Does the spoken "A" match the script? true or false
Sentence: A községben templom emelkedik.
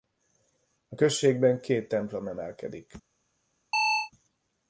true